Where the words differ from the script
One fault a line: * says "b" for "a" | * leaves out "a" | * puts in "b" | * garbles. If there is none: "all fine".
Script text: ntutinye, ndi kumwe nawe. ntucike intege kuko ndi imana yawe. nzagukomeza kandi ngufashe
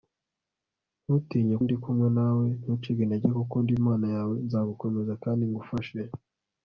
all fine